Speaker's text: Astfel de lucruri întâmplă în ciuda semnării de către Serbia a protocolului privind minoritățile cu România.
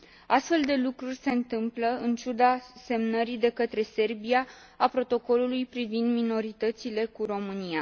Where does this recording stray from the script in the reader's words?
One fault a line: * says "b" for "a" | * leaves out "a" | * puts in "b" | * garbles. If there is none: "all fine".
* puts in "se"